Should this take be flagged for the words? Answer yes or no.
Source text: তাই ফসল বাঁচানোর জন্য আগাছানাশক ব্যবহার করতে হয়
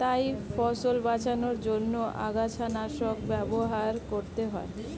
no